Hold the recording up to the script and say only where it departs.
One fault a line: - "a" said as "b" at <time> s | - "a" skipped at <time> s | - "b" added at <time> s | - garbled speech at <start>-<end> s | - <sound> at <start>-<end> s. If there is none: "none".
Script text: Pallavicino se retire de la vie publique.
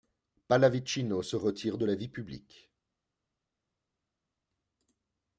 none